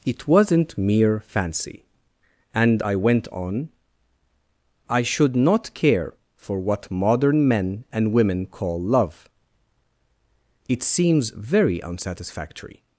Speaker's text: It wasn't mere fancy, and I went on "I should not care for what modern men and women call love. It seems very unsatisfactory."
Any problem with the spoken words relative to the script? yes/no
no